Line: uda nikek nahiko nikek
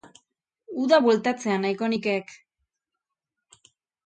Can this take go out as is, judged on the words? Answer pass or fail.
fail